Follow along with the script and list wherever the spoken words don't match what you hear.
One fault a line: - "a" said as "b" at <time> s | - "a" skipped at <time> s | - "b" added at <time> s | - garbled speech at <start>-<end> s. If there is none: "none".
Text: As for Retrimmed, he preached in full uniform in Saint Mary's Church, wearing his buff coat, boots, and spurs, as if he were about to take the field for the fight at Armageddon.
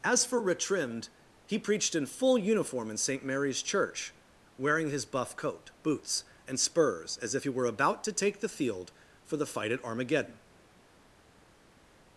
none